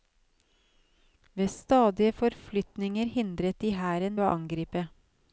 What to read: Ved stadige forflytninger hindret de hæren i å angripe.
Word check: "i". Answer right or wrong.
wrong